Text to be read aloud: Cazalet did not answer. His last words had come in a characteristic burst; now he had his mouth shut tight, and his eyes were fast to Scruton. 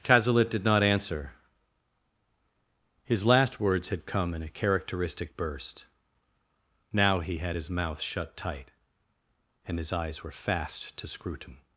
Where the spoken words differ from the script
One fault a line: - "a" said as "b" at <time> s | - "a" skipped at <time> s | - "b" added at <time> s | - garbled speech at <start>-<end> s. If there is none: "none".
none